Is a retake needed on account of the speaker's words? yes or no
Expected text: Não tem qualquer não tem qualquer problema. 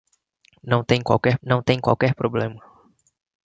no